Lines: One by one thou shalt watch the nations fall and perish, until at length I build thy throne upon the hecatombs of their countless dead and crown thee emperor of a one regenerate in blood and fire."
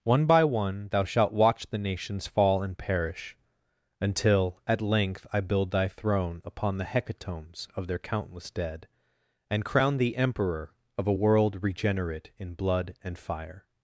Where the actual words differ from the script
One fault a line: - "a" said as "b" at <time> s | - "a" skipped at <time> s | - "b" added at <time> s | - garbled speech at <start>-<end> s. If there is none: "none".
- "one" said as "world" at 11.1 s